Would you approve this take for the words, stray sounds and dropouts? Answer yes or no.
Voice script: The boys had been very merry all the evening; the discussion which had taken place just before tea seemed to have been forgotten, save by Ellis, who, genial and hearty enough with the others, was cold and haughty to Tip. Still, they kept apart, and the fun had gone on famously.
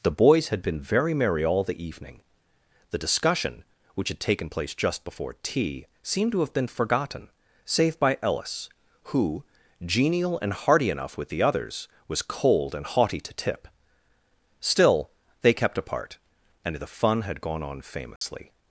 no